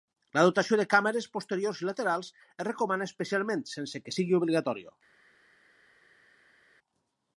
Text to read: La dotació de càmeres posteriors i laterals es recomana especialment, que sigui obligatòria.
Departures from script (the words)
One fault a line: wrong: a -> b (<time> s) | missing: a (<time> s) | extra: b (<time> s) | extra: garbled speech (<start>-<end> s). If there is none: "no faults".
extra: sense (3.7 s)